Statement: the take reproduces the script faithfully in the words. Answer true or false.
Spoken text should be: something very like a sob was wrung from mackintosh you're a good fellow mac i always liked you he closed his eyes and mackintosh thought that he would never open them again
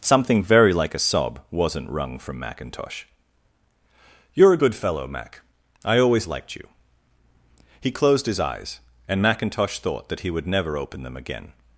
false